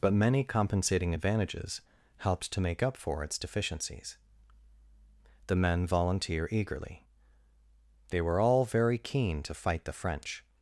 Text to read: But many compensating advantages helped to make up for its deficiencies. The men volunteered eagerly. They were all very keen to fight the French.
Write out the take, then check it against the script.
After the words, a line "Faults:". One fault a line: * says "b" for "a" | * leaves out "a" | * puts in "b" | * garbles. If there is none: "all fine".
But many compensating advantages helped to make up for its deficiencies. The men volunteer eagerly. They were all very keen to fight the French.
Faults:
* says "volunteer" for "volunteered"